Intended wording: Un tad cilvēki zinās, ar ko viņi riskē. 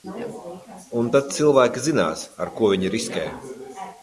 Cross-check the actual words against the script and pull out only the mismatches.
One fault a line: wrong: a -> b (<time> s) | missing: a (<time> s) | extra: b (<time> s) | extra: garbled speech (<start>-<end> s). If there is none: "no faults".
no faults